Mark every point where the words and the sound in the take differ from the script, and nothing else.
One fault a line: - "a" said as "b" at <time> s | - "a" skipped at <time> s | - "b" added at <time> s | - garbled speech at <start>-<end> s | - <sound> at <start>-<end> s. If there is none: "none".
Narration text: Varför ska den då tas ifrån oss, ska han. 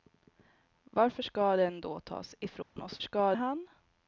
- dropout at 2.6-2.8 s